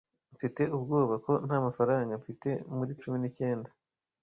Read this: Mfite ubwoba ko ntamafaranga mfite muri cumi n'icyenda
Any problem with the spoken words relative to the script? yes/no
no